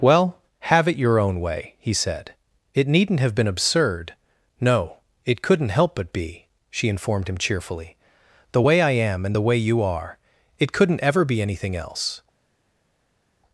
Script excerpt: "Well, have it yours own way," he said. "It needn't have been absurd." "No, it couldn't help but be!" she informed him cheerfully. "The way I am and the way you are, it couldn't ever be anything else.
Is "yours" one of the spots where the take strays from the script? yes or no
yes